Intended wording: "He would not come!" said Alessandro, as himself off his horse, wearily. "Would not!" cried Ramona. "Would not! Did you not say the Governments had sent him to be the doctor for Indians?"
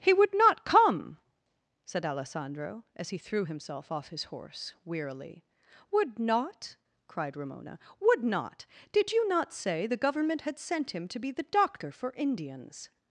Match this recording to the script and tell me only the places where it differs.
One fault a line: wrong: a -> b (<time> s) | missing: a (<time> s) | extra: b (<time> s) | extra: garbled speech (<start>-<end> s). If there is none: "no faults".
extra: he threw (3.1 s)
wrong: Governments -> Government (10.0 s)